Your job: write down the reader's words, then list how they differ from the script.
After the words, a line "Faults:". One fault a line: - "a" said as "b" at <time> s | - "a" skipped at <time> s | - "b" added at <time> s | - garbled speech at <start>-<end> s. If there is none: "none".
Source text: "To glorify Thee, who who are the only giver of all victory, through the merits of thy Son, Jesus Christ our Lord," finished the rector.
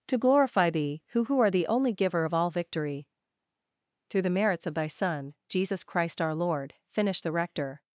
"To glorify Thee, who who are the only giver of all victory, through the merits of thy Son, Jesus Christ our Lord," finished the rector.
Faults:
none